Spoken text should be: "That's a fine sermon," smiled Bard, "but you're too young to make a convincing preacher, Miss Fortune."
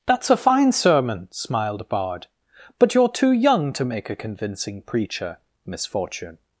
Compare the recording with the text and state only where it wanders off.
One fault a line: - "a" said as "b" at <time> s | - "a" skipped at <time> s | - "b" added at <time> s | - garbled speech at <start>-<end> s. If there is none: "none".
none